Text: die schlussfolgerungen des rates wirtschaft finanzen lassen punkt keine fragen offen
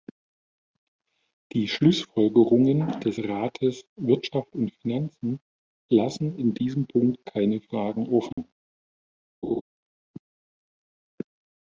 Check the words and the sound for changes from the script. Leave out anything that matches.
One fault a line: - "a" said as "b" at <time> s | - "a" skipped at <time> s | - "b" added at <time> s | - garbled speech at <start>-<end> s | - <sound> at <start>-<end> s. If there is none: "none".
- "und" added at 4.5 s
- "in diesem" added at 6.4 s
- dropout at 8.3-8.4 s
- laugh at 9.4-9.6 s